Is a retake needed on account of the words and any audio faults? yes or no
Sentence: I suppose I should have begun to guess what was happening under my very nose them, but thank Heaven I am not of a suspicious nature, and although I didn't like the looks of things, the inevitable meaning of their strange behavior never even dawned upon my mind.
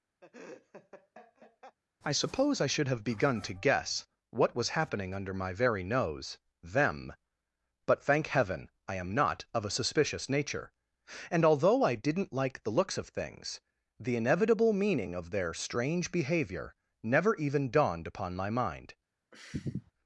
yes